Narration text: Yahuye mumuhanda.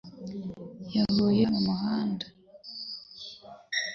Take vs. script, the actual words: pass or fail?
pass